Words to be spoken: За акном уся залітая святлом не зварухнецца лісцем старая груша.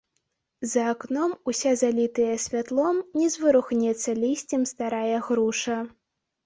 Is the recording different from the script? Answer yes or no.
no